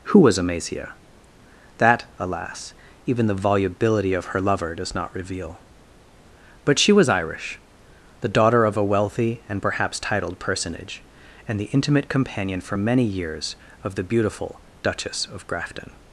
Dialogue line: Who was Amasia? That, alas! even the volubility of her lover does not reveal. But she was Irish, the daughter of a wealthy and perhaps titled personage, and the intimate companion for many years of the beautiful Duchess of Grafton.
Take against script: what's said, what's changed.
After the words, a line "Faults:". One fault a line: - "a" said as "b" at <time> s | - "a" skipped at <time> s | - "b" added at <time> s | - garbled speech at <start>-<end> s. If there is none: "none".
Who was Amasia? That, alas! even the volubility of her lover does not reveal. But she was Irish, the daughter of a wealthy and perhaps titled personage, and the intimate companion for many years of the beautiful Duchess of Grafton.
Faults:
none